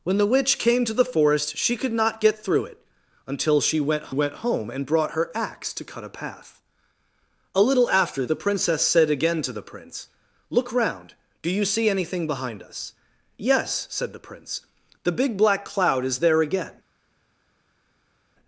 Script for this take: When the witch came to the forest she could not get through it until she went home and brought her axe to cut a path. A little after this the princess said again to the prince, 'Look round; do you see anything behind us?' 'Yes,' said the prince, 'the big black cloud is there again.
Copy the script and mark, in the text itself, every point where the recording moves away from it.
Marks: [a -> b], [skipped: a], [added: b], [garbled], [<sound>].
When the witch came to the forest she could not get through it until she went [added: went] home and brought her axe to cut a path. A little after [skipped: this] the princess said again to the prince, 'Look round; do you see anything behind us?' 'Yes,' said the prince, 'the big black cloud is there again.